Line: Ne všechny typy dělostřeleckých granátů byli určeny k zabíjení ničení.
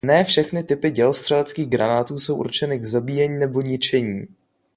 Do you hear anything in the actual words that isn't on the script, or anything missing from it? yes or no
yes